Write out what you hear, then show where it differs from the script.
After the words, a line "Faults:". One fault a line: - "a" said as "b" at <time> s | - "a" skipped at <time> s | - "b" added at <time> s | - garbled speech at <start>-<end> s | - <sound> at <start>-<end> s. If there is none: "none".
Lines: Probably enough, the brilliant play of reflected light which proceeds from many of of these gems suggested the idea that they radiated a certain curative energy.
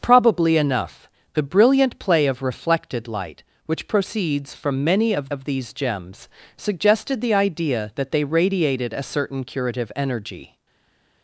Probably enough, the brilliant play of reflected light which proceeds from many of of these gems suggested the idea that they radiated a certain curative energy.
Faults:
none